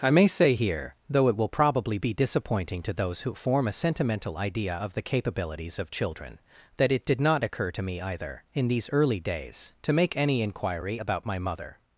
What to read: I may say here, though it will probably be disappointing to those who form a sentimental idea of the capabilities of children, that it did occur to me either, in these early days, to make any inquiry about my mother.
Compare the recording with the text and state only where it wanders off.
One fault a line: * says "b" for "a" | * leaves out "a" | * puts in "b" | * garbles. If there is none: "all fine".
* puts in "not"